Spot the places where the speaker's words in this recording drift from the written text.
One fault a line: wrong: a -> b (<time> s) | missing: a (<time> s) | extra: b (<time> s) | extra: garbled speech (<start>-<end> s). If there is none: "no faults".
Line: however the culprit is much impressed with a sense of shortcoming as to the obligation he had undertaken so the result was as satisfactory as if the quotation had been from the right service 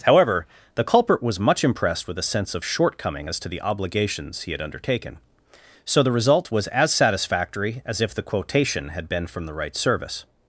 wrong: is -> was (1.2 s)
wrong: obligation -> obligations (3.6 s)